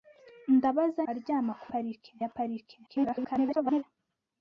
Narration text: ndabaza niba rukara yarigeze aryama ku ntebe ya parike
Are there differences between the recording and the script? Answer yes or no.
yes